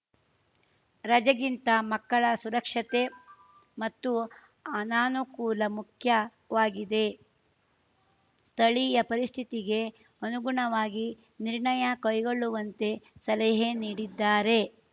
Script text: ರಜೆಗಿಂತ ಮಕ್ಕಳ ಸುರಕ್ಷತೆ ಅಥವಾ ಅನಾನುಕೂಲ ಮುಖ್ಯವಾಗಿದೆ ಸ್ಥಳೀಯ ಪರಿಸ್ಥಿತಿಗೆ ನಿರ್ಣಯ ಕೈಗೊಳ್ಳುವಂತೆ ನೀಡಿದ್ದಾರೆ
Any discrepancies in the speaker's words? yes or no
yes